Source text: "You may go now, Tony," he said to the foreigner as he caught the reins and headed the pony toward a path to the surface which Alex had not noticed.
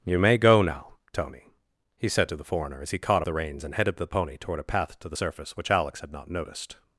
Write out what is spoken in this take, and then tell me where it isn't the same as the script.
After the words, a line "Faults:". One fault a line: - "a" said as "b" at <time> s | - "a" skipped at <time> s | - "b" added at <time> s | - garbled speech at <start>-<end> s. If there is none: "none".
"You may go now, Tony," he said to the foreigner as he caught the reins and headed the pony toward a path to the surface which Alex had not noticed.
Faults:
none